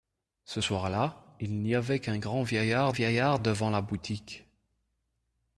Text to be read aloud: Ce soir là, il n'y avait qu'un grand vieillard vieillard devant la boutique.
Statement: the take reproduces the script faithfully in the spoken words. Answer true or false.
true